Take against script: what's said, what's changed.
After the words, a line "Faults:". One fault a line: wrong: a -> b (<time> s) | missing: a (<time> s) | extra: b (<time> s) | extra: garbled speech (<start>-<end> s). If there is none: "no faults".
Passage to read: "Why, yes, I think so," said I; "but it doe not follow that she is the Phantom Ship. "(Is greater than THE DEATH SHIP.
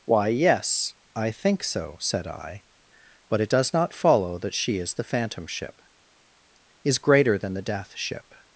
"Why, yes, I think so," said I; "but it does not follow that she is the Phantom Ship. "(Is greater than THE DEATH SHIP.
Faults:
wrong: doe -> does (3.5 s)